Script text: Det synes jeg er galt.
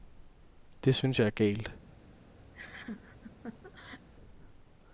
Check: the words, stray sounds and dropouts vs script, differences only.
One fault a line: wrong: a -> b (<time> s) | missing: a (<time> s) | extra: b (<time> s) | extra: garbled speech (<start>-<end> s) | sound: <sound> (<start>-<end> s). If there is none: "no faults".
sound: laugh (2.5-4.1 s)